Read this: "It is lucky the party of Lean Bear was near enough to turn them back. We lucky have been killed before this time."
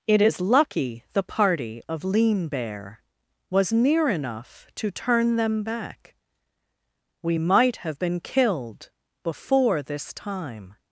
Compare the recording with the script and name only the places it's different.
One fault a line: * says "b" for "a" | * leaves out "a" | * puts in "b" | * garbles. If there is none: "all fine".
* says "might" for "lucky"